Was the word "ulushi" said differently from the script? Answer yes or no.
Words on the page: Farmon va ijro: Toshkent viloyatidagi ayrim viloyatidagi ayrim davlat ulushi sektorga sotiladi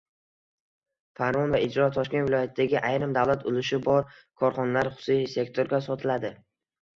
yes